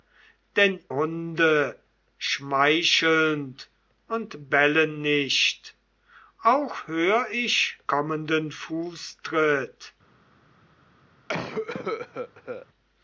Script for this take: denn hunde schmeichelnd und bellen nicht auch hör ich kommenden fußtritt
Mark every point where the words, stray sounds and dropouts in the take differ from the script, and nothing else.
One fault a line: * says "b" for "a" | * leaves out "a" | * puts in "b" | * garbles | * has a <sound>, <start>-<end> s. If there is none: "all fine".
* has a cough, 11.3-12.7 s